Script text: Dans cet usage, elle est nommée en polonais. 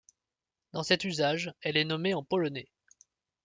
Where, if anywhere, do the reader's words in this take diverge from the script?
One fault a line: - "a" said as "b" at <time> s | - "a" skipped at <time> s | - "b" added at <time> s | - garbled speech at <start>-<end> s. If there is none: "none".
none